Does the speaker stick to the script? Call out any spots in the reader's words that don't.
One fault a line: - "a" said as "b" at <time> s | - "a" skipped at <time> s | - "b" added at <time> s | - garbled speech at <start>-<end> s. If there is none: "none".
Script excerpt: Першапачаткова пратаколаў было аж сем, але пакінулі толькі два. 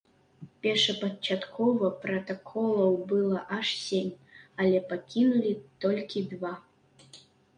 none